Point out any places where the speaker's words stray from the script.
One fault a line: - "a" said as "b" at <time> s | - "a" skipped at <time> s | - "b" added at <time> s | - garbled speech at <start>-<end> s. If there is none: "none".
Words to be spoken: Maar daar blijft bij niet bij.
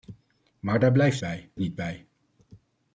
none